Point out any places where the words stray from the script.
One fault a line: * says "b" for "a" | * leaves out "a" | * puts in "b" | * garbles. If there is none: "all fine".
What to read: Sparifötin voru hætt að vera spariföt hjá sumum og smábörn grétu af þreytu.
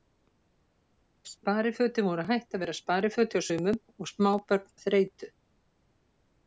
* leaves out "grétu"